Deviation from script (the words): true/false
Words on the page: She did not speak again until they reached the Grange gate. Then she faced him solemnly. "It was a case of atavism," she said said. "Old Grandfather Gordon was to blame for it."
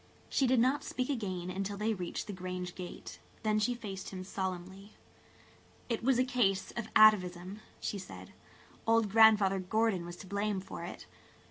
true